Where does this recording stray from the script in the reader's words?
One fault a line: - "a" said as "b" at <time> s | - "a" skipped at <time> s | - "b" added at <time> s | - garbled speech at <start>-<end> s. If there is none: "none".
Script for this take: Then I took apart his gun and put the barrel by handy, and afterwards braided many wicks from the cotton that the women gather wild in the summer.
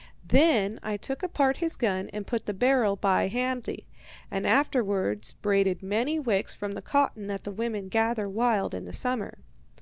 none